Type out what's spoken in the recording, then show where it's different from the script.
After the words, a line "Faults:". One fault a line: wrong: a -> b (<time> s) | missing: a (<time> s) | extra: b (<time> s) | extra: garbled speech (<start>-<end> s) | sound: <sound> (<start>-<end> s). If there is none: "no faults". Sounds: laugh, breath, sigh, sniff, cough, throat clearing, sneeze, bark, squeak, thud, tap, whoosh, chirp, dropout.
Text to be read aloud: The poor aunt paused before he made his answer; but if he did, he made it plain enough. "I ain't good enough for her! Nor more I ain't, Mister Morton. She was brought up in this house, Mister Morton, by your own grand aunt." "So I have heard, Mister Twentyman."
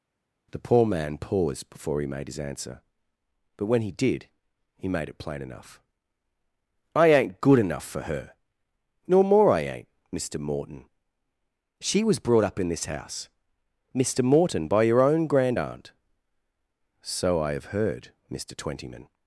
The poor man paused before he made his answer; but when he did, he made it plain enough. "I ain't good enough for her! Nor more I ain't, Mister Morton. She was brought up in this house, Mister Morton, by your own grand aunt." "So I have heard, Mister Twentyman."
Faults:
wrong: aunt -> man (0.9 s)
wrong: if -> when (3.7 s)